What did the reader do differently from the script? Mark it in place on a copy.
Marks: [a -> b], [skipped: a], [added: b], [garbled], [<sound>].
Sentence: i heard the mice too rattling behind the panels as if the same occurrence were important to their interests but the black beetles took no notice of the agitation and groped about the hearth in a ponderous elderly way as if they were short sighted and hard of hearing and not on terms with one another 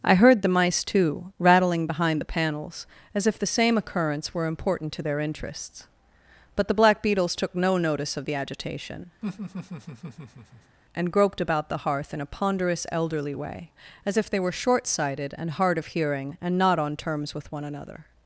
i heard the mice too rattling behind the panels as if the same occurrence were important to their interests but the black beetles took no notice of the agitation [laugh] and groped about the hearth in a ponderous elderly way as if they were short sighted and hard of hearing and not on terms with one another